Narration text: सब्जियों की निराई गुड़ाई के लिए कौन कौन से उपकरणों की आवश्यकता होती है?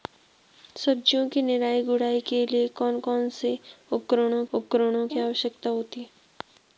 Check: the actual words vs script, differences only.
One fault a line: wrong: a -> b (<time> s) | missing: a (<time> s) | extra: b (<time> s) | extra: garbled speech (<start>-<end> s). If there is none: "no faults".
extra: उपकरणों (4.5 s)